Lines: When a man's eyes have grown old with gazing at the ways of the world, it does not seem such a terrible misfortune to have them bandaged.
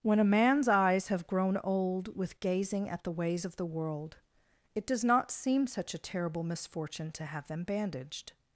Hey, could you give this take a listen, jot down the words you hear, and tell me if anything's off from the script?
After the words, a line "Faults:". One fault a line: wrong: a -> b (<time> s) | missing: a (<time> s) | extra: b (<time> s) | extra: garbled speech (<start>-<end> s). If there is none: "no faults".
When a man's eyes have grown old with gazing at the ways of the world, it does not seem such a terrible misfortune to have them bandaged.
Faults:
no faults